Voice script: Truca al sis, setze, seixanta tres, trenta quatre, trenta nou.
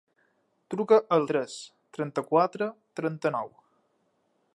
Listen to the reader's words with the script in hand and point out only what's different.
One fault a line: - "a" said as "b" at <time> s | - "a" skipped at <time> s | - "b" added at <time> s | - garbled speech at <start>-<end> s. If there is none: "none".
- "sis setze seixanta" skipped at 1.3 s